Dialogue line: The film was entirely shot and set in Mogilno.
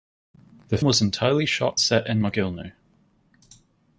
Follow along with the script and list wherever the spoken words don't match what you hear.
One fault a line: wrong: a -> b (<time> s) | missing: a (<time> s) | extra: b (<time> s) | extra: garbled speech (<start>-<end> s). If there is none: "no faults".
missing: film (0.8 s)
missing: and (1.8 s)